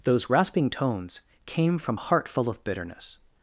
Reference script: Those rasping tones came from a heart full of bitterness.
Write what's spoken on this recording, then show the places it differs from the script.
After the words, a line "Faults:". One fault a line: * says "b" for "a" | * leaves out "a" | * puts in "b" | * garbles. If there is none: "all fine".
Those rasping tones came from heart full of bitterness.
Faults:
* leaves out "a"